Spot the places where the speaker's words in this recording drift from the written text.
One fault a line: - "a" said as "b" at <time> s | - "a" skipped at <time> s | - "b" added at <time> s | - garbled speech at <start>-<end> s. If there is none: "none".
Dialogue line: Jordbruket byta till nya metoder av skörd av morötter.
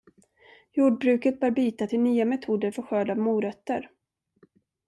- "bör" added at 1.4 s
- "av" said as "för" at 2.7 s